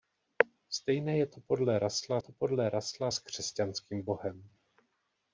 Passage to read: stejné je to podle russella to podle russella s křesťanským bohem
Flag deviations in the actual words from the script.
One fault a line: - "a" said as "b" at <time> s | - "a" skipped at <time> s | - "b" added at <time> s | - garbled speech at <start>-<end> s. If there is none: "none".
none